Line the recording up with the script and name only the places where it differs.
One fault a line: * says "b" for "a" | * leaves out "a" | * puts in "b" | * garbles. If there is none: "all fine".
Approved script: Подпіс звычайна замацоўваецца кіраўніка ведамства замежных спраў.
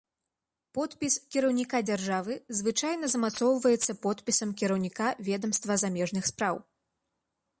* puts in "кіраўніка дзяржавы"
* puts in "подпісам"